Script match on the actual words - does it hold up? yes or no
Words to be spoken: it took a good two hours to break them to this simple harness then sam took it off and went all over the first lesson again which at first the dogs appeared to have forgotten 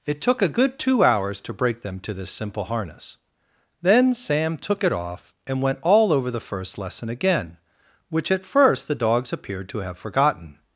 yes